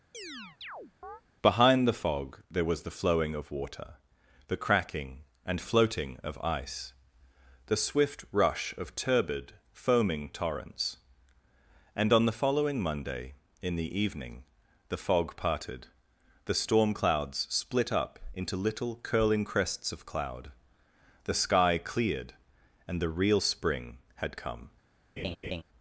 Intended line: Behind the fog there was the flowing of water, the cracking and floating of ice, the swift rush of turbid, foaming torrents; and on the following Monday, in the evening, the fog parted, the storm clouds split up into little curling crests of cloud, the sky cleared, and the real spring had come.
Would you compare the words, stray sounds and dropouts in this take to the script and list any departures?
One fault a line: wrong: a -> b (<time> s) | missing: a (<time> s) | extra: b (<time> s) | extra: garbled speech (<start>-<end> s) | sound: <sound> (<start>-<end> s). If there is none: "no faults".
sound: chirp (0.1-1.2 s)
sound: laugh (25.2-25.6 s)